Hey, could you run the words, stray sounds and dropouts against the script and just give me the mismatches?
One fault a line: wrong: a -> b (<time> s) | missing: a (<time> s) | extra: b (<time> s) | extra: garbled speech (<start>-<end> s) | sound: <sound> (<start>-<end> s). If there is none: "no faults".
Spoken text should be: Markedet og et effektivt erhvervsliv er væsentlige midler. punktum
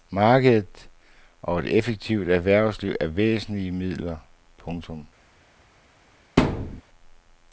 sound: thud (6.4-6.8 s)